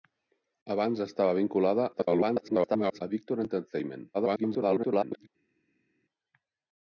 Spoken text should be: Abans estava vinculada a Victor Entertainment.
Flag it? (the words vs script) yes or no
yes